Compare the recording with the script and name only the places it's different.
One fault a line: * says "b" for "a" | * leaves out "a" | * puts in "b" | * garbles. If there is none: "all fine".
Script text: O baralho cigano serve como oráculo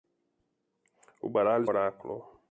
* leaves out "cigano serve como"